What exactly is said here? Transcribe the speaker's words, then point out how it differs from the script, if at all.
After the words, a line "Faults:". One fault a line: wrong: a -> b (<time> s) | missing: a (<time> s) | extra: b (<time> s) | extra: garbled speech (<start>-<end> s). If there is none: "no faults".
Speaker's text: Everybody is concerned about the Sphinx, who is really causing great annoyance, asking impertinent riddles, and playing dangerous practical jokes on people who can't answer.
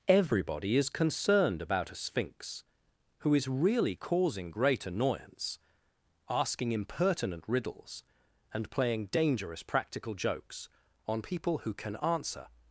Everybody is concerned about a Sphinx, who is really causing great annoyance, asking impertinent riddles, and playing dangerous practical jokes on people who can answer.
Faults:
wrong: the -> a (1.9 s)
wrong: can't -> can (11.7 s)